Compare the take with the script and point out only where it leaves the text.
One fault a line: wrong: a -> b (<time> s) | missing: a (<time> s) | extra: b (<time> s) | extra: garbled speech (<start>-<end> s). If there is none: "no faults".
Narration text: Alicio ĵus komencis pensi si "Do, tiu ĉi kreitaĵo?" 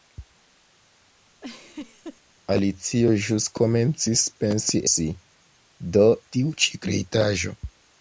no faults